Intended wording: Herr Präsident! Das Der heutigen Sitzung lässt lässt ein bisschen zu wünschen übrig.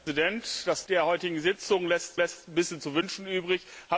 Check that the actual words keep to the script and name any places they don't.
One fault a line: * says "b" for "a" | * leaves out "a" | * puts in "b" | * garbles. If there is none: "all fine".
all fine